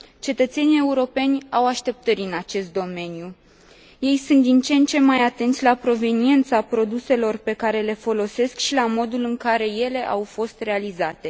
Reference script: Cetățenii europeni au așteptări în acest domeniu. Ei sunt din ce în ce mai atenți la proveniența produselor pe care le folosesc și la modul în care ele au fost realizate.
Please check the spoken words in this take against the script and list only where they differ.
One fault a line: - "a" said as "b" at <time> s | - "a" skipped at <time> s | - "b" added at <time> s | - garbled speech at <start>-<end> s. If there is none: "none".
none